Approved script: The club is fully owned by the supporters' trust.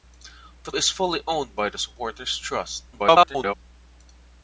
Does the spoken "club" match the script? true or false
false